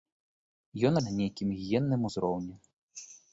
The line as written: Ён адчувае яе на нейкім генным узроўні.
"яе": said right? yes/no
no